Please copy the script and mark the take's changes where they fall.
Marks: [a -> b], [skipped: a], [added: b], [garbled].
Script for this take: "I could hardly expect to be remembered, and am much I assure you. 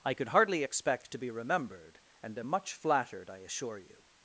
"I could hardly expect to be remembered, and am much [added: flattered] I assure you.